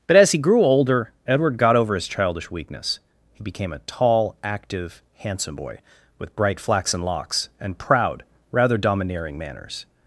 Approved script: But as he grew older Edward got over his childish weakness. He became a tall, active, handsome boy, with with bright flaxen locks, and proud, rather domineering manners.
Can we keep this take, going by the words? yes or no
no